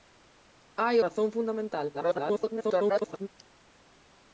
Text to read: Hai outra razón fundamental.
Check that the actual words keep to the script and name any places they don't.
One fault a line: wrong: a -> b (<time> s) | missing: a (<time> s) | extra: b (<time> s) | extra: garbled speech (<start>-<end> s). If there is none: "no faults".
missing: outra (0.9 s)
extra: garbled speech (1.9-3.3 s)